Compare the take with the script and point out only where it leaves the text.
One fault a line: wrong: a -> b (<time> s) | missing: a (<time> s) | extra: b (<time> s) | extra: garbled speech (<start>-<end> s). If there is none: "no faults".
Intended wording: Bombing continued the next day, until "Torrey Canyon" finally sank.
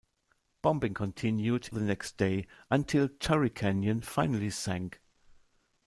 no faults